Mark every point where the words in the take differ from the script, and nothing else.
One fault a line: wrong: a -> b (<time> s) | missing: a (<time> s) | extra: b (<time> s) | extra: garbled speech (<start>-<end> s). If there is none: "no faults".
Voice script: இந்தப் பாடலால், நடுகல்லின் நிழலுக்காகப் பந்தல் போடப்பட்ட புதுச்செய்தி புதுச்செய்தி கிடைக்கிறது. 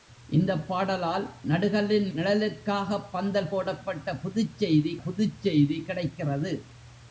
no faults